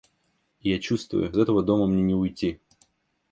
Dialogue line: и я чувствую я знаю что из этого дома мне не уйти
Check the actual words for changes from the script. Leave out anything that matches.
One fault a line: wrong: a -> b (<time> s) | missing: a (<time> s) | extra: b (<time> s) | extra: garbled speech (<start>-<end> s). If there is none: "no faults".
missing: я знаю что (1.3 s)